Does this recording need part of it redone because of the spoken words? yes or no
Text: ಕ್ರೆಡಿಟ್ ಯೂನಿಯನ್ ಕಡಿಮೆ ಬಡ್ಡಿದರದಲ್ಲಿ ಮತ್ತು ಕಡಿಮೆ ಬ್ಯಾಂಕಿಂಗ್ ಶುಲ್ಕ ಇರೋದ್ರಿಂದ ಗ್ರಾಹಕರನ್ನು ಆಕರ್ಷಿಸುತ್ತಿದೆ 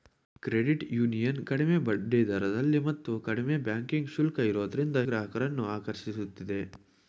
no